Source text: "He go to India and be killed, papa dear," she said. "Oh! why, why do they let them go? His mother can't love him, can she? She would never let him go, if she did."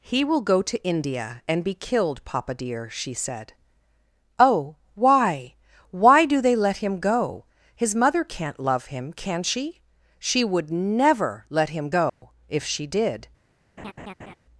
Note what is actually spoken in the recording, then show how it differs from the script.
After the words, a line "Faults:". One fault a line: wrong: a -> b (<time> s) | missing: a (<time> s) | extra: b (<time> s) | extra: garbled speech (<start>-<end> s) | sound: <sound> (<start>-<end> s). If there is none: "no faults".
"He will go to India and be killed, papa dear," she said. "Oh! why, why do they let him go? His mother can't love him, can she? She would never let him go, if she did."
Faults:
extra: will (0.2 s)
wrong: them -> him (6.8 s)
sound: dropout (12.1-12.2 s)
sound: laugh (13.8-14.4 s)